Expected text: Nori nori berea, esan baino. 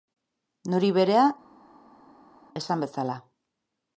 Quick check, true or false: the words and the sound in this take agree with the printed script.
false